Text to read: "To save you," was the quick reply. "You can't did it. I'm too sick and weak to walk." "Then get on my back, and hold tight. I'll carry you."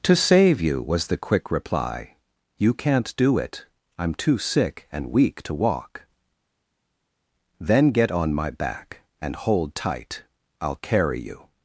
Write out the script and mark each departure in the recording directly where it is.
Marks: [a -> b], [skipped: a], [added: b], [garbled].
"To save you," was the quick reply. "You can't [did -> do] it. I'm too sick and weak to walk." "Then get on my back, and hold tight. I'll carry you."